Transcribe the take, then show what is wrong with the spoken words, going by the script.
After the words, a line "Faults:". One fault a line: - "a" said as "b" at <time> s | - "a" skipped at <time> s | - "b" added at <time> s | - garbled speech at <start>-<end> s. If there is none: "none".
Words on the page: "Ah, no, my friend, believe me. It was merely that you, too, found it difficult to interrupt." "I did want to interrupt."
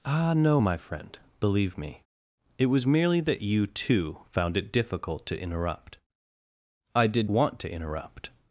"Ah, no, my friend, believe me. It was merely that you, too, found it difficult to interrupt." "I did want to interrupt."
Faults:
none